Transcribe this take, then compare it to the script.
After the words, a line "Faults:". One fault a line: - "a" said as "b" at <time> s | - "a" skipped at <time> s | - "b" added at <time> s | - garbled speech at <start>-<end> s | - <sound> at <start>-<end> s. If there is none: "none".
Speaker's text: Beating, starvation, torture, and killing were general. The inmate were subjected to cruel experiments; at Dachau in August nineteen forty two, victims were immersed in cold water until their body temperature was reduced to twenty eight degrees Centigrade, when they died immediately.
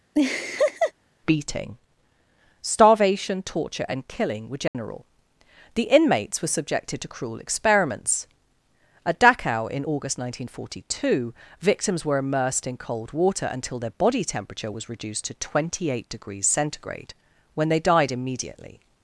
Beating, starvation, torture, and killing were general. The inmates were subjected to cruel experiments; at Dachau in August nineteen forty two, victims were immersed in cold water until their body temperature was reduced to twenty eight degrees Centigrade, when they died immediately.
Faults:
- laugh at 0.1-0.9 s
- dropout at 4.7-4.7 s
- "inmate" said as "inmates" at 5.9 s